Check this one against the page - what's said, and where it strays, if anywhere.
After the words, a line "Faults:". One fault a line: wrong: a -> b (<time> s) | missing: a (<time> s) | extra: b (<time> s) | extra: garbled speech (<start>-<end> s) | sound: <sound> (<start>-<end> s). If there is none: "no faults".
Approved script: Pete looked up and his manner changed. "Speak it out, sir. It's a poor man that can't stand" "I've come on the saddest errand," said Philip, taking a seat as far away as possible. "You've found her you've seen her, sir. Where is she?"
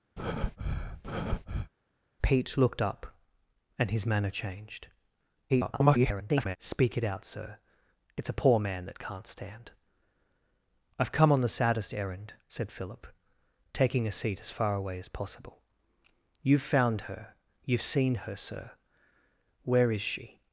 Pete looked up and his manner changed. [garbled] "Speak it out, sir. It's a poor man that can't stand" "I've come on the saddest errand," said Philip, taking a seat as far away as possible. "You've found her you've seen her, sir. Where is she?"
Faults:
sound: breath (0.2-1.7 s)
extra: garbled speech (5.5-6.6 s)